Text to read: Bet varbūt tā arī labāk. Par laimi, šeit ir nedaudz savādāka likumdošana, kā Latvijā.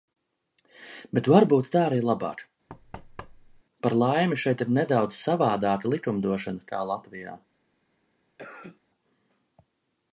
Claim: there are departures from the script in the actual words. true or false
false